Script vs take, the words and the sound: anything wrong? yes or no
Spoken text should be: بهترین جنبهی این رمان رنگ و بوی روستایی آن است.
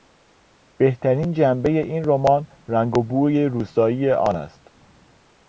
no